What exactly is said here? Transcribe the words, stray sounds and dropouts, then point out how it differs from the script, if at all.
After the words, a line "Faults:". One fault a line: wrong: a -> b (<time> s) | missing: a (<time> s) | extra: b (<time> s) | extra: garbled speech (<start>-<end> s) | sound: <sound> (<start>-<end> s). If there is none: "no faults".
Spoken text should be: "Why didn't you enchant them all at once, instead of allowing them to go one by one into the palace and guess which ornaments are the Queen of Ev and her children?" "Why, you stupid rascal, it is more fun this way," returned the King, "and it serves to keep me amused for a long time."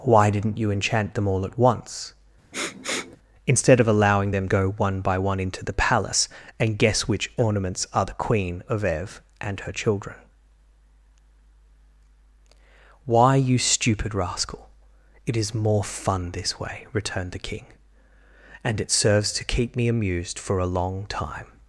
"Why didn't you enchant them all at once, instead of allowing them go one by one into the palace and guess which ornaments are the Queen of Ev and her children?" "Why, you stupid rascal, it is more fun this way," returned the King, "and it serves to keep me amused for a long time."
Faults:
sound: sniff (2.5-3.2 s)
missing: to (4.5 s)